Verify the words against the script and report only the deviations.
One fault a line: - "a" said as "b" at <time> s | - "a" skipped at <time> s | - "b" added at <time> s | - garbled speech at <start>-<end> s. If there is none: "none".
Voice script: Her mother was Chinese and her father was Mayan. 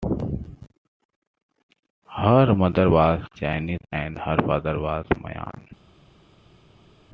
none